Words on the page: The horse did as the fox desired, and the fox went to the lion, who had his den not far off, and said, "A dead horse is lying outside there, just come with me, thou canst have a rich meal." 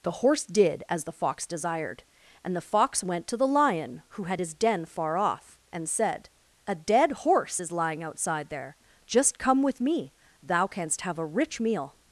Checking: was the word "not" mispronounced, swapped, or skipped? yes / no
yes